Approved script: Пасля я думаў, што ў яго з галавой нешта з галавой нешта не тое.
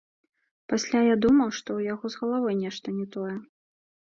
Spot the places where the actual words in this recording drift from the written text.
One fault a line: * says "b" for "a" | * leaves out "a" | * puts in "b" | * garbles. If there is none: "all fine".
* leaves out "з галавой нешта"